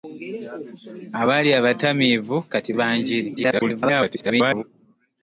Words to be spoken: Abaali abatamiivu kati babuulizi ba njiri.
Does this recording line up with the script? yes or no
no